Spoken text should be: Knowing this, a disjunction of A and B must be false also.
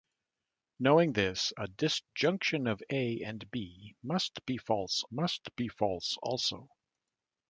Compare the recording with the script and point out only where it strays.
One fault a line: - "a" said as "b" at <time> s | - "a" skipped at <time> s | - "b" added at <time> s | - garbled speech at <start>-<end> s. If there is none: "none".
- "must be false" added at 5.1 s